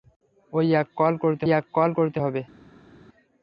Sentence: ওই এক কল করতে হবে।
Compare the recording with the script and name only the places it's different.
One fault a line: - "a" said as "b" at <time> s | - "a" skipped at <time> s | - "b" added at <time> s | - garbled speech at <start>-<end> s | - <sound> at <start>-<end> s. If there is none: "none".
- "এক কল করতে" added at 1.5 s